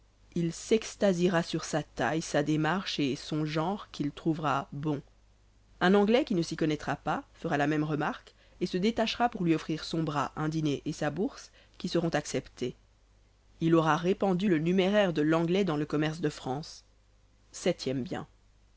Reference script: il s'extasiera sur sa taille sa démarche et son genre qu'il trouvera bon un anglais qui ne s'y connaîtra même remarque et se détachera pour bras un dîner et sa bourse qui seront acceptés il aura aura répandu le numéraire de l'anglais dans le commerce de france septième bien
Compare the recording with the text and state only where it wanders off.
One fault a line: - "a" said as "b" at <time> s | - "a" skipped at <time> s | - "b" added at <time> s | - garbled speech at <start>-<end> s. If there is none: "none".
- "pas fera la" added at 7.0 s
- "lui offrir son" added at 9.4 s
- "aura" skipped at 14.0 s